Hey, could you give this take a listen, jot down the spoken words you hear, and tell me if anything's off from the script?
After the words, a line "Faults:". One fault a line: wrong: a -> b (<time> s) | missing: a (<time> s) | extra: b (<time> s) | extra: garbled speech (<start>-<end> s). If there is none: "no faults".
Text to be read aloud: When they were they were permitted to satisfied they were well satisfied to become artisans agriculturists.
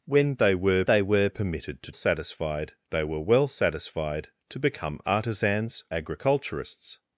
When they were they were permitted to satisfied they were well satisfied to become artisans agriculturists.
Faults:
no faults